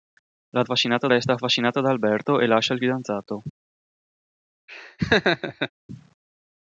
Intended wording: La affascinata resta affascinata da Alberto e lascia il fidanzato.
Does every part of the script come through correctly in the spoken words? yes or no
yes